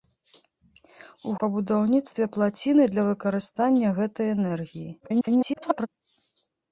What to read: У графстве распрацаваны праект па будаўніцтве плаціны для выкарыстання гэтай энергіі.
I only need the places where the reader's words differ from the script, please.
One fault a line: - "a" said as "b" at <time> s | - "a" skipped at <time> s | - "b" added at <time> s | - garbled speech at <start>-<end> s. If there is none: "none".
- "графстве распрацаваны праект" skipped at 1.3 s
- garbled speech at 5.0-5.9 s